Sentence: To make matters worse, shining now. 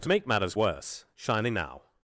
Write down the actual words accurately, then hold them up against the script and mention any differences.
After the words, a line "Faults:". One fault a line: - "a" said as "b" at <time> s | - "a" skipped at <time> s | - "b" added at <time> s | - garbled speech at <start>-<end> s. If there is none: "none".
To make matters worse, shining now.
Faults:
none